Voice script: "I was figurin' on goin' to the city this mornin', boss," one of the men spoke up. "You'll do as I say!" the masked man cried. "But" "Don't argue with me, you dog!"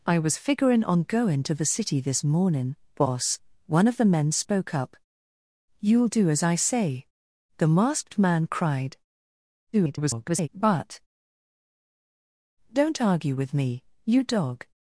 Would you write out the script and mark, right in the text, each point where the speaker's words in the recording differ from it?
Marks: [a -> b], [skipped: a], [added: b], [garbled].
"I was figurin' on goin' to the city this mornin', boss," one of the men spoke up. "You'll do as I say!" the masked man cried. [garbled] "But" "Don't argue with me, you dog!"